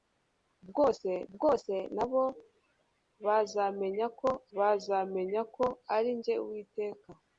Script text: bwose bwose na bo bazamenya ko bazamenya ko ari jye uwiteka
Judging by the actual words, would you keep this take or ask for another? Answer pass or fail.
pass